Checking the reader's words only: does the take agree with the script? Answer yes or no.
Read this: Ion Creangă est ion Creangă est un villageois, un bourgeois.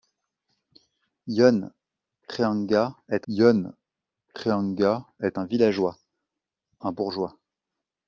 yes